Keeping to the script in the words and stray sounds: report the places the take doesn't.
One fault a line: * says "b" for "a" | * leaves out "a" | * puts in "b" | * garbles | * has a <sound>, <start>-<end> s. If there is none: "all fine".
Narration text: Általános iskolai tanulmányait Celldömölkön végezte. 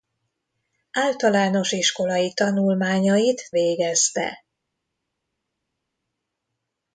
* leaves out "Celldömölkön"